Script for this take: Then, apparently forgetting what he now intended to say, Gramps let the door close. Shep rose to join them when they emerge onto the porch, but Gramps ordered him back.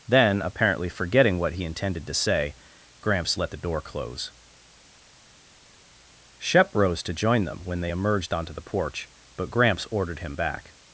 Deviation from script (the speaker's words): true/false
true